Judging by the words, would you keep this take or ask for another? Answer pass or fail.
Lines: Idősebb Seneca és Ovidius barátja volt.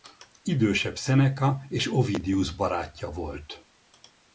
pass